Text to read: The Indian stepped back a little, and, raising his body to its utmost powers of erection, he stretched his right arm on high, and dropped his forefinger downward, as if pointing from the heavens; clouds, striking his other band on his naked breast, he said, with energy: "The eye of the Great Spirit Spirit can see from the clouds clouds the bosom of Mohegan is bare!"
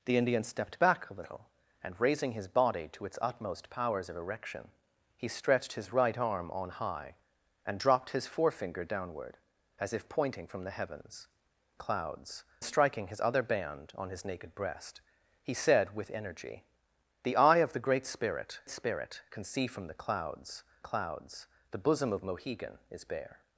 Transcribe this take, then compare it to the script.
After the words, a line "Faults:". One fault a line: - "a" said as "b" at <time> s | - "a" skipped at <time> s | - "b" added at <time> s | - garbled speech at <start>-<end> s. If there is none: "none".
The Indian stepped back a little, and, raising his body to its utmost powers of erection, he stretched his right arm on high, and dropped his forefinger downward, as if pointing from the heavens; clouds, striking his other band on his naked breast, he said, with energy: "The eye of the Great Spirit Spirit can see from the clouds clouds the bosom of Mohegan is bare!"
Faults:
none